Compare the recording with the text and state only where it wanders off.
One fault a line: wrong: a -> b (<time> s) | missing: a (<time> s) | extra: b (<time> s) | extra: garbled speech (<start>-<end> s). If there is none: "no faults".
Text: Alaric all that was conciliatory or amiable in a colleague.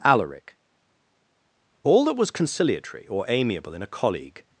no faults